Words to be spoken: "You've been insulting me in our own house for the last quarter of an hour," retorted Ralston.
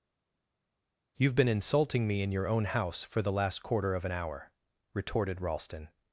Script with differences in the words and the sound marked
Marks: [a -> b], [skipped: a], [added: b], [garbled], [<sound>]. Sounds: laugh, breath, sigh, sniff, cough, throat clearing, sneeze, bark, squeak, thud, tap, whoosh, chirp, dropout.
"You've been insulting me in [our -> your] own house for the last quarter of an hour," retorted Ralston.